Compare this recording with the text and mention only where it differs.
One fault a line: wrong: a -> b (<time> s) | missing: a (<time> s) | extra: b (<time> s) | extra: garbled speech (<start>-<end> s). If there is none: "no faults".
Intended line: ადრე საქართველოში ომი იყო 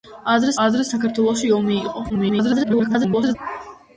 extra: ადრე (0.7 s)
extra: garbled speech (2.1-3.4 s)